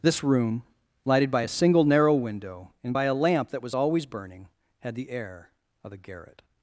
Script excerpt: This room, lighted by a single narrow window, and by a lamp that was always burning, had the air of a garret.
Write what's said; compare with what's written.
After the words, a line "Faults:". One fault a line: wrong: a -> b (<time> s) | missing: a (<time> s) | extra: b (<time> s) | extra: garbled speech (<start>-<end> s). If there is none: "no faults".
This room, lighted by a single narrow window, and by a lamp that was always burning, had the air of a garret.
Faults:
no faults